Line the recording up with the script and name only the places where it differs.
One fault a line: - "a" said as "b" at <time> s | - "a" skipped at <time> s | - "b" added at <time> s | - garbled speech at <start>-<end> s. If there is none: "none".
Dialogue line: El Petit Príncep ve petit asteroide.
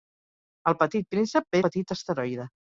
none